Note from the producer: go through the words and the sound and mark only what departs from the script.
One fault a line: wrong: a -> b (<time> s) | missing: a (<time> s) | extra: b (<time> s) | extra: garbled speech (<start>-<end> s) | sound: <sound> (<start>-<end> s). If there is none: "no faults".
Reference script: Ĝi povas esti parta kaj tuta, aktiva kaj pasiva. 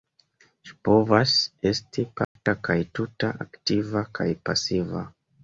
sound: dropout (2.2-2.4 s)